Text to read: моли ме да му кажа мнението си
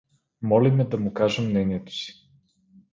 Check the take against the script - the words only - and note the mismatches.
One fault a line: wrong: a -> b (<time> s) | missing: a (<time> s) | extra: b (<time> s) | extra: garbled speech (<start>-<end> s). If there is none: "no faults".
no faults